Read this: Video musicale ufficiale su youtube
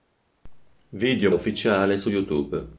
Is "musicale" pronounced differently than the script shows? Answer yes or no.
yes